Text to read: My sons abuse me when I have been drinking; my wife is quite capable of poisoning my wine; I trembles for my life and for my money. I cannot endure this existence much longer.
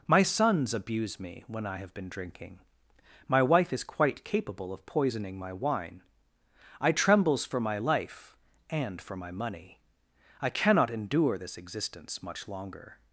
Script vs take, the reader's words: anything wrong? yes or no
no